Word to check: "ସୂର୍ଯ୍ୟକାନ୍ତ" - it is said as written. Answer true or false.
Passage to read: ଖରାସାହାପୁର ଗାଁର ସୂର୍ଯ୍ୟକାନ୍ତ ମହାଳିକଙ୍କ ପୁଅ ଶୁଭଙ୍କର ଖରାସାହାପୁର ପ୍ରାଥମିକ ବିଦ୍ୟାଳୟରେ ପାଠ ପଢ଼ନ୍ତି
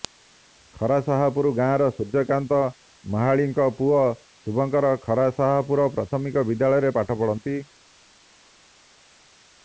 true